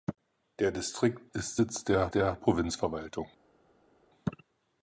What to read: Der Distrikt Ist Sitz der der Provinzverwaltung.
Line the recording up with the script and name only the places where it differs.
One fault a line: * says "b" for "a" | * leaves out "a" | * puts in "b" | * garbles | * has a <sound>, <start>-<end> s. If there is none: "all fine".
all fine